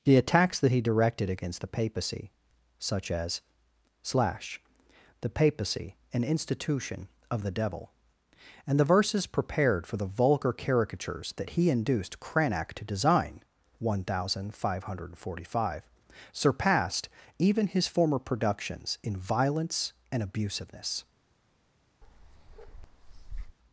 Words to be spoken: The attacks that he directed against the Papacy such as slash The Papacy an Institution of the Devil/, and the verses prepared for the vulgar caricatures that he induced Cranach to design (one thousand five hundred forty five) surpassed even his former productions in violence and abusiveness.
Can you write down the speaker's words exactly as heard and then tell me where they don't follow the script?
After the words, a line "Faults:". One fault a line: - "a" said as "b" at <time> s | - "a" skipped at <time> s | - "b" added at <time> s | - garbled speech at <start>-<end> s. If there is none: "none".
The attacks that he directed against the Papacy such as slash The Papacy an Institution of the Devil/, and the verses prepared for the vulgar caricatures that he induced Cranach to design (one thousand five hundred forty five) surpassed even his former productions in violence and abusiveness.
Faults:
none